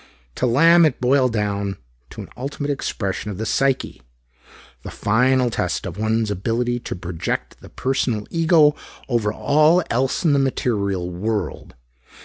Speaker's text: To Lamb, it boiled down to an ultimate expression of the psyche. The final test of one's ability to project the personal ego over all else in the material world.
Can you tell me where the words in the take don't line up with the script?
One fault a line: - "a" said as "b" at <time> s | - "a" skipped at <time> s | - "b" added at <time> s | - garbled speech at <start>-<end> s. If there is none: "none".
none